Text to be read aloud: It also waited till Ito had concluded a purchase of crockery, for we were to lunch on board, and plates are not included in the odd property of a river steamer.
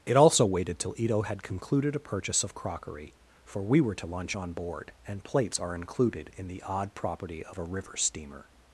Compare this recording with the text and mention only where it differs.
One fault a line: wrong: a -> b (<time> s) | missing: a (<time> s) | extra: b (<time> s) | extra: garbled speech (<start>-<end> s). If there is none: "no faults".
missing: not (5.8 s)